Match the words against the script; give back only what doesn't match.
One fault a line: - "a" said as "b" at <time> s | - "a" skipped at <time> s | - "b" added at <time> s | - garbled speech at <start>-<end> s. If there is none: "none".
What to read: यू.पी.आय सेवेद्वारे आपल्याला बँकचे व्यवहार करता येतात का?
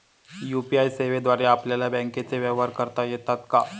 none